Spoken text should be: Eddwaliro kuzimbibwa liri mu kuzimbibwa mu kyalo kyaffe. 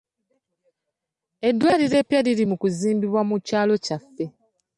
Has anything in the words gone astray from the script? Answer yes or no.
yes